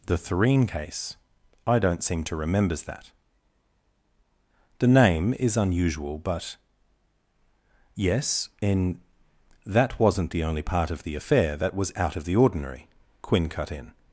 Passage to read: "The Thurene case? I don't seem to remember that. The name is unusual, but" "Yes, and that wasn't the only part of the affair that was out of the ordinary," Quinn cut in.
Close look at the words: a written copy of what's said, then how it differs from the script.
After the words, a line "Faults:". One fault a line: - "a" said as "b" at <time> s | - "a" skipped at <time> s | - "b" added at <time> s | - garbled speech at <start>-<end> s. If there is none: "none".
"The Thurene case? I don't seem to remembers that. The name is unusual, but" "Yes, in that wasn't the only part of the affair that was out of the ordinary," Quinn cut in.
Faults:
- "remember" said as "remembers" at 2.3 s
- "and" said as "in" at 8.6 s